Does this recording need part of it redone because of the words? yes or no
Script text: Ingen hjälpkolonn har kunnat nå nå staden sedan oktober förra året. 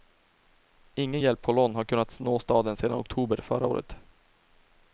yes